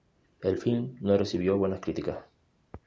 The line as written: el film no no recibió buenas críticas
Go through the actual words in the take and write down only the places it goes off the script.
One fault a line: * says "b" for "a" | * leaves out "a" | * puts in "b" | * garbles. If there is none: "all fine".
* leaves out "no"